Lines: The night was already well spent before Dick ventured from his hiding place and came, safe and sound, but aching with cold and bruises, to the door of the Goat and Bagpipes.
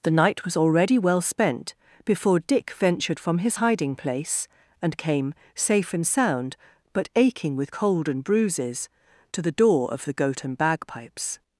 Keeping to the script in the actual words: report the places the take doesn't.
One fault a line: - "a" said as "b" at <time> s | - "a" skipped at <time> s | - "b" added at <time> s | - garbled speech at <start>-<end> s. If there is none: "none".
none